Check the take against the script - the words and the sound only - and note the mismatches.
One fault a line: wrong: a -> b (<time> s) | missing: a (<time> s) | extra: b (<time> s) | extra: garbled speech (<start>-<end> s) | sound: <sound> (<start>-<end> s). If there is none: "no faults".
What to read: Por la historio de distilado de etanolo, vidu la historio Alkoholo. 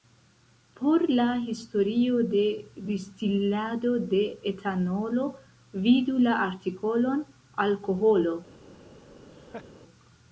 wrong: historio -> artikolon (6.4 s)
sound: laugh (9.3-9.7 s)